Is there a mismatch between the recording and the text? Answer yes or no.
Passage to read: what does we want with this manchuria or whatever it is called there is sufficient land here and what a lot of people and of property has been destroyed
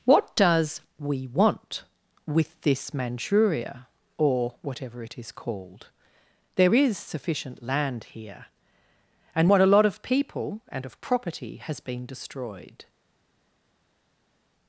no